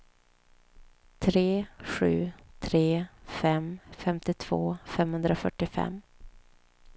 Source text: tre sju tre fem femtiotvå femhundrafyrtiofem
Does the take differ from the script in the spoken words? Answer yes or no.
no